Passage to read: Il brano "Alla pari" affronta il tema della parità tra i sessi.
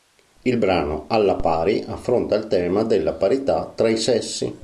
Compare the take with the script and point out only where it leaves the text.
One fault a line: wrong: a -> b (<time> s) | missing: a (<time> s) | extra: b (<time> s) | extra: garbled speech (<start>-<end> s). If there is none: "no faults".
no faults